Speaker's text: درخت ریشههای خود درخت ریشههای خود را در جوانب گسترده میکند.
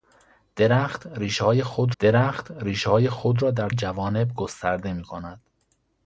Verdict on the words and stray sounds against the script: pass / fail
pass